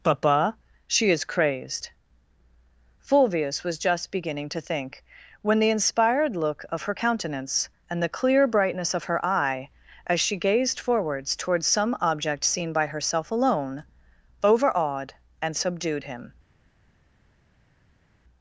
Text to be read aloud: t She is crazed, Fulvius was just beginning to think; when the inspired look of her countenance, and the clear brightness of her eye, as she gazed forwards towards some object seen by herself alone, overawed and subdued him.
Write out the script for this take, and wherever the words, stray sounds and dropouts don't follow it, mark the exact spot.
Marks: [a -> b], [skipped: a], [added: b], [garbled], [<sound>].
[t -> papa] She is crazed, Fulvius was just beginning to think; when the inspired look of her countenance, and the clear brightness of her eye, as she gazed forwards towards some object seen by herself alone, overawed and subdued him.